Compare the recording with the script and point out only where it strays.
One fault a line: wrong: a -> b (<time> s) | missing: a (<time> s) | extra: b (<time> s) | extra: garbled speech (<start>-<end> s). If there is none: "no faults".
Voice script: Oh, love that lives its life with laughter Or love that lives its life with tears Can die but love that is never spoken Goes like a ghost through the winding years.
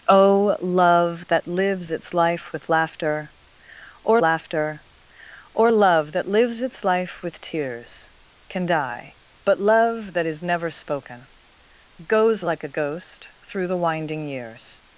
extra: laughter Or (4.2 s)